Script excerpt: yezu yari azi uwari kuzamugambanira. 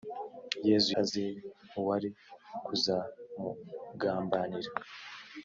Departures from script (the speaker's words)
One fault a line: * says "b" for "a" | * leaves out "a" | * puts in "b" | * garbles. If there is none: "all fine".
* leaves out "yari"